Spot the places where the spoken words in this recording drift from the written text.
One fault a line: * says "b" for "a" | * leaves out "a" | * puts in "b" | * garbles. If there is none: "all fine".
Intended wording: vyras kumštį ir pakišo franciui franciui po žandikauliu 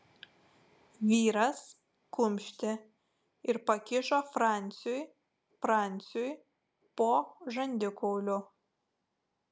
all fine